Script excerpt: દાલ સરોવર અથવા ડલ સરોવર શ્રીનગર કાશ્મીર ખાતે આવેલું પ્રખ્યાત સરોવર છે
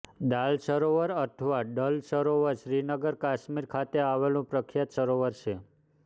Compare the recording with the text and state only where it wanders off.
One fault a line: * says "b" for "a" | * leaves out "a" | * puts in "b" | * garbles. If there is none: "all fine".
all fine